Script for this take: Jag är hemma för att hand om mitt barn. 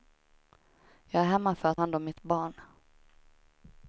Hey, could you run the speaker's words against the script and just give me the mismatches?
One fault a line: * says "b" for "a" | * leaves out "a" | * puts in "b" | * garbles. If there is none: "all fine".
all fine